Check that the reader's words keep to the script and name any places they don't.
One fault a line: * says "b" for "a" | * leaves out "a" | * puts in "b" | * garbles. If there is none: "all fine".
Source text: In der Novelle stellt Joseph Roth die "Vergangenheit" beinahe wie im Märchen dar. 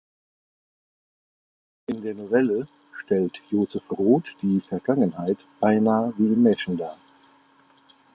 all fine